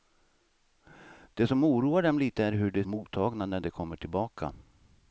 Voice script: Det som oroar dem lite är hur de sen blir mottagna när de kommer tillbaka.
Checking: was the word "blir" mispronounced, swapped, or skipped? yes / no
yes